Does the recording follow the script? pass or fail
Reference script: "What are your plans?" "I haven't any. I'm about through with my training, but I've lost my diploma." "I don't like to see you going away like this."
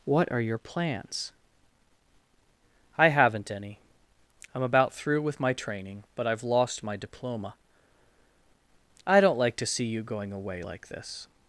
pass